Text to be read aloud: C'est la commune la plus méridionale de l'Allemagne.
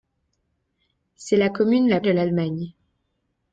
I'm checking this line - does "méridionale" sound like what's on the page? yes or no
no